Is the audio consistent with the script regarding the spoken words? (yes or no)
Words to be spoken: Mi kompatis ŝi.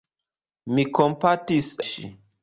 yes